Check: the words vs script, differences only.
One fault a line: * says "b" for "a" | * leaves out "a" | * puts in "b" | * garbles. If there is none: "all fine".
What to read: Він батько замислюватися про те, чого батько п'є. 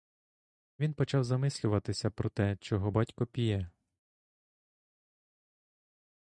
* says "почав" for "батько"